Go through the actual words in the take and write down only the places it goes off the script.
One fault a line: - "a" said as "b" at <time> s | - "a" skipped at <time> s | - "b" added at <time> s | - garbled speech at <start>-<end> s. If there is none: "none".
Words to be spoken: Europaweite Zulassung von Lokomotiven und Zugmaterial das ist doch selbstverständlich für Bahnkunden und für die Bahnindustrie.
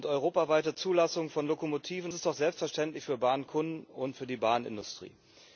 - "und Zugmaterial das" skipped at 2.1 s